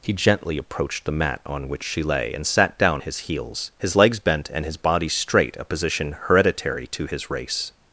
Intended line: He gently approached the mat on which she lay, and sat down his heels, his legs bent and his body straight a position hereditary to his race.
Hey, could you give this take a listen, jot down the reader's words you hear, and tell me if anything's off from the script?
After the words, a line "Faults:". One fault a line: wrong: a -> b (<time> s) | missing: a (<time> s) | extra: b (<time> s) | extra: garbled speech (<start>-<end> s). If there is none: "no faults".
He gently approached the mat on which she lay, and sat down his heels, his legs bent and his body straight a position hereditary to his race.
Faults:
no faults